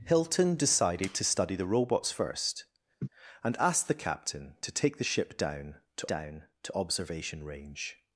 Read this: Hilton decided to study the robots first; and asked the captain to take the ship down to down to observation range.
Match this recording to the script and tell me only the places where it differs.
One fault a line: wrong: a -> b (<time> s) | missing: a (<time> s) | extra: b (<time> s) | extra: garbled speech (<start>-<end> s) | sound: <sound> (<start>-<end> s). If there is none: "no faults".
sound: laugh (3.0-3.1 s)